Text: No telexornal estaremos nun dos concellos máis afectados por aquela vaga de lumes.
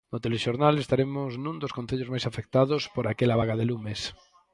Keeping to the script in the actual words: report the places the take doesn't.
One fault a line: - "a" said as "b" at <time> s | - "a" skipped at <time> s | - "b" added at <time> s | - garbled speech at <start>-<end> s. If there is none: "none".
none